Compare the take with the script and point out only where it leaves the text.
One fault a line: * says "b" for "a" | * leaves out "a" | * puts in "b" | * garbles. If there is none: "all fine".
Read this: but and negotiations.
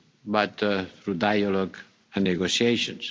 * puts in "through dialogue"